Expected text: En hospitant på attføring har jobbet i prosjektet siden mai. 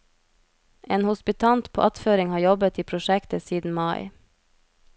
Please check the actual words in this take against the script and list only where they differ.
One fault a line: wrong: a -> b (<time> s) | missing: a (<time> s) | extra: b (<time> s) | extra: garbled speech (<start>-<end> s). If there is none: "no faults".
no faults